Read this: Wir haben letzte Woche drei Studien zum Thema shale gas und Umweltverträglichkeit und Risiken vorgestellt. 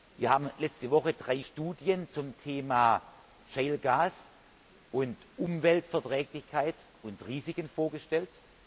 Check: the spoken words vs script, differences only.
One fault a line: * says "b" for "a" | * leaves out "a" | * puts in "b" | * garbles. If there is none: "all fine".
all fine